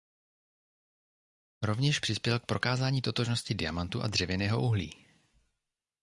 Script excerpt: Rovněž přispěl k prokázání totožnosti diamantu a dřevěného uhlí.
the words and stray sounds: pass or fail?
pass